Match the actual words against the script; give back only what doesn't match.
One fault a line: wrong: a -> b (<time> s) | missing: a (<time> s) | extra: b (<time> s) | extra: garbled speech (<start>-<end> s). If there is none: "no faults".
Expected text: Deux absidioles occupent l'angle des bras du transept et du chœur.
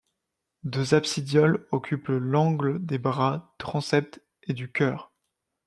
missing: du (3.5 s)